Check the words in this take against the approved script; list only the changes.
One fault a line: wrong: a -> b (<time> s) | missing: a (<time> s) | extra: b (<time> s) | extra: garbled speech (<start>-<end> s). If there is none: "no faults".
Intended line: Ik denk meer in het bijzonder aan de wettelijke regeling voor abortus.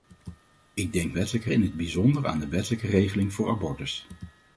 wrong: meer -> wettelijke (1.1 s)